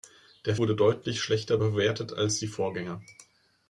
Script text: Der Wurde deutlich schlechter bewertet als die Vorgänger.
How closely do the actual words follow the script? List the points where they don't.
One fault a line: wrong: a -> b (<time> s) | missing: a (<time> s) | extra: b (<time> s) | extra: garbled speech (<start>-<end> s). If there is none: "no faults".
no faults